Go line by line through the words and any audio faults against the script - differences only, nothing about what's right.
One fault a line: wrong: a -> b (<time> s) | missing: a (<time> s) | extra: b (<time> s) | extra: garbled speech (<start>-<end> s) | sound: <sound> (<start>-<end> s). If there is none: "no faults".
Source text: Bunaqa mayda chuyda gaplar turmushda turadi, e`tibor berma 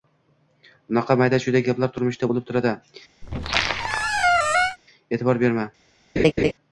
extra: bo`lib (2.3 s)
sound: squeak (3.2-4.8 s)
sound: laugh (6.2-6.5 s)